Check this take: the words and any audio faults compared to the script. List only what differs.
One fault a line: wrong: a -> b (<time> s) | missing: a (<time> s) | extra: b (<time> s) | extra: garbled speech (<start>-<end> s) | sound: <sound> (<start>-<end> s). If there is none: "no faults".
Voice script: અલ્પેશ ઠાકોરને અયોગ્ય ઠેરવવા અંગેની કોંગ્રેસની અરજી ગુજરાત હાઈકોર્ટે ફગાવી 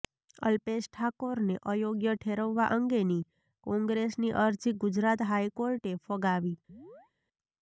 sound: chirp (6.7-7.1 s)